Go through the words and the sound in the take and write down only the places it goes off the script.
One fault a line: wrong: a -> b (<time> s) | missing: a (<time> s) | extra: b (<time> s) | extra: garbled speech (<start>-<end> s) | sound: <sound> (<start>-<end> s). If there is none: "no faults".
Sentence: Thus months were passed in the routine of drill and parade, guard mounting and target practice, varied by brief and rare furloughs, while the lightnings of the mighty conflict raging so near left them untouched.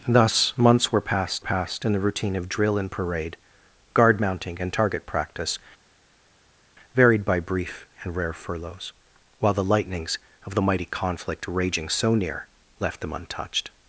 extra: passed (1.4 s)